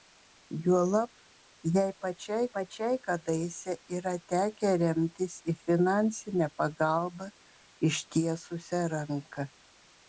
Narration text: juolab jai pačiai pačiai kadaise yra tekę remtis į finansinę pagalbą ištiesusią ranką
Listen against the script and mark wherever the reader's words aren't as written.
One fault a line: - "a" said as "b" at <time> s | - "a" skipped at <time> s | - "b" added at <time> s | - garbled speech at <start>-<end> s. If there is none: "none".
none